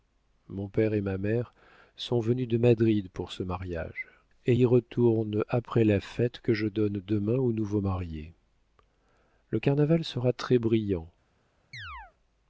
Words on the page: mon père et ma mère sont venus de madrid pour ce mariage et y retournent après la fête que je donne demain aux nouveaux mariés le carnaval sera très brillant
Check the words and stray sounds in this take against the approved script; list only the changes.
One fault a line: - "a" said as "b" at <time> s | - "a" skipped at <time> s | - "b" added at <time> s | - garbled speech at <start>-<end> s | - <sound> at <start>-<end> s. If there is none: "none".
- chirp at 11.7-12.1 s